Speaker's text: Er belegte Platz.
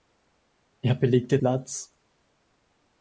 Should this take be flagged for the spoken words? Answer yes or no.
no